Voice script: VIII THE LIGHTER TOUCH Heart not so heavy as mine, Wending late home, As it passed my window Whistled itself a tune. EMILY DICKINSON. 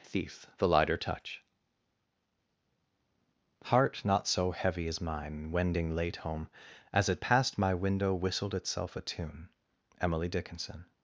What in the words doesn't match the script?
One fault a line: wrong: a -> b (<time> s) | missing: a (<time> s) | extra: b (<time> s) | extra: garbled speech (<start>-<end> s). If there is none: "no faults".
wrong: VIII -> Thief (0.0 s)